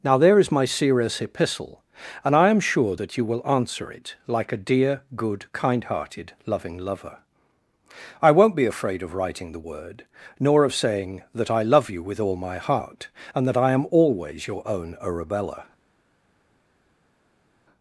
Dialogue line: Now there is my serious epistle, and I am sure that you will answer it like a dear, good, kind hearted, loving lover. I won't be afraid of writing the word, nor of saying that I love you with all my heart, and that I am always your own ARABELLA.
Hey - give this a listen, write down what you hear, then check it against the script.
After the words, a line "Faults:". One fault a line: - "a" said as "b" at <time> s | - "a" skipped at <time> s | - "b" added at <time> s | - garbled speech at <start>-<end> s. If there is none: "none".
Now there is my serious epistle, and I am sure that you will answer it like a dear, good, kind hearted, loving lover. I won't be afraid of writing the word, nor of saying that I love you with all my heart, and that I am always your own ARABELLA.
Faults:
none